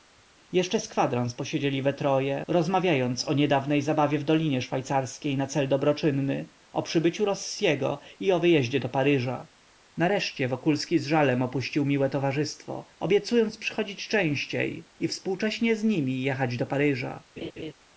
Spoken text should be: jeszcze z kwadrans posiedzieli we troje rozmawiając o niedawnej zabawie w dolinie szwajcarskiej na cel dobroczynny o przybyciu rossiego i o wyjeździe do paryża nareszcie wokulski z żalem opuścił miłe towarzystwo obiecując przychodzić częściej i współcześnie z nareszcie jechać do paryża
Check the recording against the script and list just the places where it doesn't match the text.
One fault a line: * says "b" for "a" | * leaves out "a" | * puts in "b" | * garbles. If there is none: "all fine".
* says "nimi" for "nareszcie"